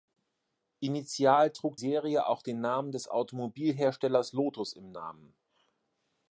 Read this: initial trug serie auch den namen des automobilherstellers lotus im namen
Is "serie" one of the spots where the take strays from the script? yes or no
no